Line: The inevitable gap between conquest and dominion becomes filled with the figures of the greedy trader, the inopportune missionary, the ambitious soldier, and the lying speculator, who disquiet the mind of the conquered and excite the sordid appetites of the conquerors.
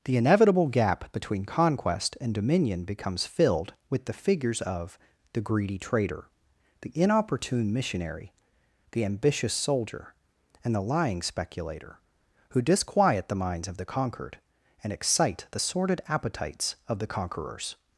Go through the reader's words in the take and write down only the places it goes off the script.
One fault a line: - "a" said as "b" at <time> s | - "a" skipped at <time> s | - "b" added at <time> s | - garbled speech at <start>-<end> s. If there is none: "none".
- "mind" said as "minds" at 13.3 s